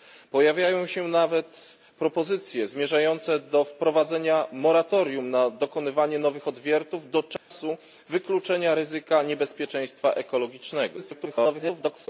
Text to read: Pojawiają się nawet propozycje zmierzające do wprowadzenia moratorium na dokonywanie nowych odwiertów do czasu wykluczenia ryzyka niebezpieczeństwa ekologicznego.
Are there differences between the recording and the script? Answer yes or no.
yes